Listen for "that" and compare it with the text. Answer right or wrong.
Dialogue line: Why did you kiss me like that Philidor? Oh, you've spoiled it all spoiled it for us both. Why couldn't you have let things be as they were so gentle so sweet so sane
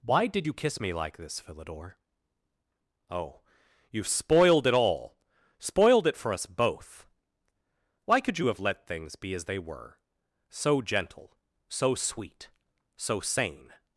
wrong